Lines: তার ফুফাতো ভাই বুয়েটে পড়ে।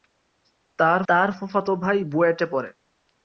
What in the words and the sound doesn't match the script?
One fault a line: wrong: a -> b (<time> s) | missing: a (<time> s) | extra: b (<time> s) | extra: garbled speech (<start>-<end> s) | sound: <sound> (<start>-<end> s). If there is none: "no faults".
extra: তার (1.1 s)